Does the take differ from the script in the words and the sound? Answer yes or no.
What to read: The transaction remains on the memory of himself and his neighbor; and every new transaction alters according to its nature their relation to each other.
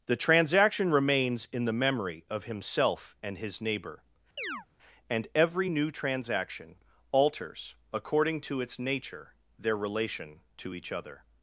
yes